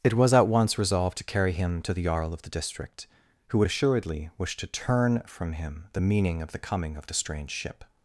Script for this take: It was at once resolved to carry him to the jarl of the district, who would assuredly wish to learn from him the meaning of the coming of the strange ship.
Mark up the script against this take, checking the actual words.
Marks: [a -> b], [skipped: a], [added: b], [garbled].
It was at once resolved to carry him to the jarl of the district, who would assuredly wish to [learn -> turn] from him the meaning of the coming of the strange ship.